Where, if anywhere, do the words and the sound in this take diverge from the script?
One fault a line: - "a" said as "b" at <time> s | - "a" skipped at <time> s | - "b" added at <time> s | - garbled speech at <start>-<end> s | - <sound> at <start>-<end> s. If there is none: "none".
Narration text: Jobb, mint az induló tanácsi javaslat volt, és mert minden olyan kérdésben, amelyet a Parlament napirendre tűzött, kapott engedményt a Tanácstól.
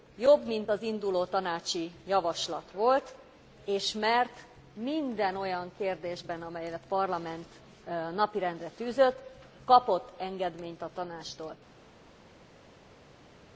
none